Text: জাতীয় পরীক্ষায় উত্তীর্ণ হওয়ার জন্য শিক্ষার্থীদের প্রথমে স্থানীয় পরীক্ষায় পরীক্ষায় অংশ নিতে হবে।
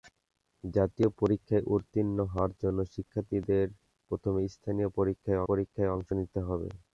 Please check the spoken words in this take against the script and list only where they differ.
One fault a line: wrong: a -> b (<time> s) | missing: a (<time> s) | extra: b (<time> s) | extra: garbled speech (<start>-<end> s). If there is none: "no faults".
no faults